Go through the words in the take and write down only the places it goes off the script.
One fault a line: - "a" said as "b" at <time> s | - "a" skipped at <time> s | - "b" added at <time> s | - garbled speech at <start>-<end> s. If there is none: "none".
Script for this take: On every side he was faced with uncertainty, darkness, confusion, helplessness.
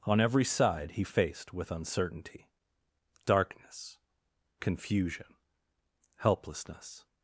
- "was" skipped at 1.0 s